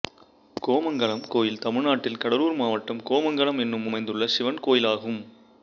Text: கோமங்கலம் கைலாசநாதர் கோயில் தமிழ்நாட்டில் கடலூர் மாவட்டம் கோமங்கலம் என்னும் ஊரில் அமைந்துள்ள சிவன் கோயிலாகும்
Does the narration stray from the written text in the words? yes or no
yes